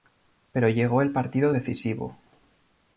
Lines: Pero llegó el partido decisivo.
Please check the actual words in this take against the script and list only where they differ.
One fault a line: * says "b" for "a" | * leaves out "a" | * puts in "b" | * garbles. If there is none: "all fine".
all fine